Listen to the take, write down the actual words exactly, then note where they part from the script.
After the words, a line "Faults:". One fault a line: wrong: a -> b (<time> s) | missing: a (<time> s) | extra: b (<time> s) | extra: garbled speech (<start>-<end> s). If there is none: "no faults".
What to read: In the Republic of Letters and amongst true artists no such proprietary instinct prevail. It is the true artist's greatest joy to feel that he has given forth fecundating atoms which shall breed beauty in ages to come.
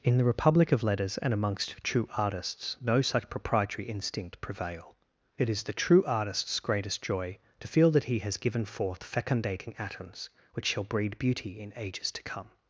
In the Republic of Letters and amongst true artists no such proprietary instinct prevail. It is the true artist's greatest joy to feel that he has given forth fecundating atoms which shall breed beauty in ages to come.
Faults:
no faults